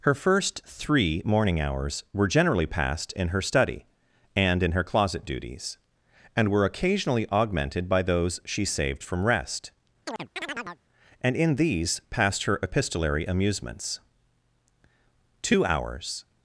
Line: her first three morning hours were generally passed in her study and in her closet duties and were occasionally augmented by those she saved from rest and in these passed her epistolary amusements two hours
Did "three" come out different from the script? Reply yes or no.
no